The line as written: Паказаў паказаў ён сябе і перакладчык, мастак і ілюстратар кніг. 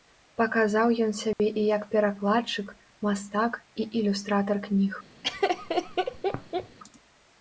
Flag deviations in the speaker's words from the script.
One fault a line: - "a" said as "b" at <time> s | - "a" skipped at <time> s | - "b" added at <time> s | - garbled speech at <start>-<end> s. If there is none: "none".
- "паказаў" skipped at 0.9 s
- "як" added at 1.8 s